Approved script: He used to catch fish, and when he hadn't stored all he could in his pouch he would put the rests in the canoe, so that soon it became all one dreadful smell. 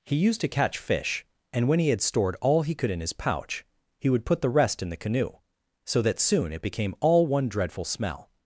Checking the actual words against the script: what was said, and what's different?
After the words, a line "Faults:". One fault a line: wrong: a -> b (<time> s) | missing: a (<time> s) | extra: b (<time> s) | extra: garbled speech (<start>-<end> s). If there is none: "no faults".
He used to catch fish, and when he had stored all he could in his pouch he would put the rest in the canoe, so that soon it became all one dreadful smell.
Faults:
wrong: hadn't -> had (1.9 s)
wrong: rests -> rest (4.5 s)